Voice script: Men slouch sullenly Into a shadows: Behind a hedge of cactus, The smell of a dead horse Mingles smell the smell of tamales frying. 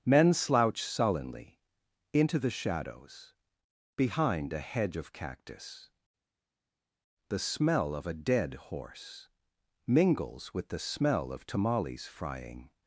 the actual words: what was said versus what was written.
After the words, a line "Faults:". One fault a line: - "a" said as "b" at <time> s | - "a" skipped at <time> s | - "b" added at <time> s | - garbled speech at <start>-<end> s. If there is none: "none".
Men slouch sullenly Into the shadows: Behind a hedge of cactus, The smell of a dead horse Mingles with the smell of tamales frying.
Faults:
- "a" said as "the" at 2.4 s
- "smell" said as "with" at 10.5 s